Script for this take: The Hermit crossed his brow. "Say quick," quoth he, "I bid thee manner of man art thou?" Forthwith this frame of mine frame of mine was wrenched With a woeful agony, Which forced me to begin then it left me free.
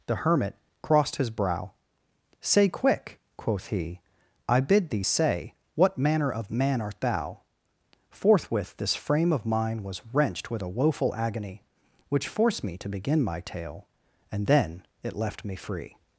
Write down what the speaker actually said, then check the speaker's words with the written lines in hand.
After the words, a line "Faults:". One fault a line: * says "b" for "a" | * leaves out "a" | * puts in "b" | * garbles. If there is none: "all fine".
The Hermit crossed his brow. "Say quick," quoth he, "I bid thee say What manner of man art thou?" Forthwith this frame of mine was wrenched With a woeful agony, Which forced me to begin my tale; And then it left me free.
Faults:
* puts in "say What"
* leaves out "frame of mine"
* puts in "my tale And"